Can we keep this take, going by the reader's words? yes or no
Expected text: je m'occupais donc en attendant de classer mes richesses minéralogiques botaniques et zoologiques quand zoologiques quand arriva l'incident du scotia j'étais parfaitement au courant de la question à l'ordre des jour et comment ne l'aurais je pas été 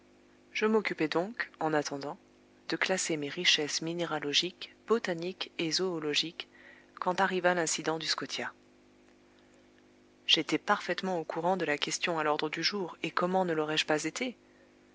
no